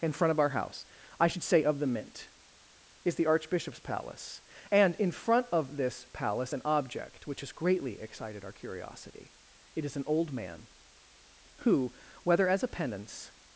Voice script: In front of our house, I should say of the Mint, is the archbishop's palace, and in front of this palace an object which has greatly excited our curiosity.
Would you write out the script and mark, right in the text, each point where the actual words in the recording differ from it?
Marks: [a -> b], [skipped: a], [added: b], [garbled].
In front of our house, I should say of the Mint, is the archbishop's palace, and in front of this palace an object which has greatly excited our curiosity. [added: It is an old man who whether as a penance]